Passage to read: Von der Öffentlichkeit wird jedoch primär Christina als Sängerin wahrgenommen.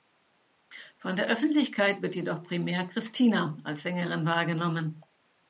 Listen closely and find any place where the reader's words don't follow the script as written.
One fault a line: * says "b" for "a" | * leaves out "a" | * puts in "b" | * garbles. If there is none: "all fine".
all fine